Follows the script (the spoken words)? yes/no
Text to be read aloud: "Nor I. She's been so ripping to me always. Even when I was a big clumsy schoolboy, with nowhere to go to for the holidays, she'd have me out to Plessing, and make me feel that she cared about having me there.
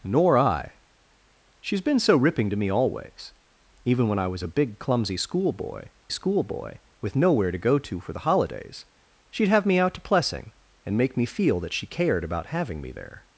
no